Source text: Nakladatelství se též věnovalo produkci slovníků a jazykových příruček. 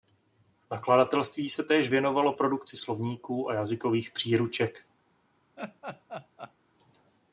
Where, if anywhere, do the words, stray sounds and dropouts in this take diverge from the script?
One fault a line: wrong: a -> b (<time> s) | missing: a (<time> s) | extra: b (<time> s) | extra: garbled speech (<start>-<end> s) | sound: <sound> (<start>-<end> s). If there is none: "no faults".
sound: laugh (5.6-6.5 s)